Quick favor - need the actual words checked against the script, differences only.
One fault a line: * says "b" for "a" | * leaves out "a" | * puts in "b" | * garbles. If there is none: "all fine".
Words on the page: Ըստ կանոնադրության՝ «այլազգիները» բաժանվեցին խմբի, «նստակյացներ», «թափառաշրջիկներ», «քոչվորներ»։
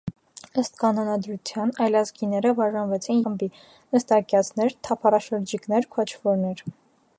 all fine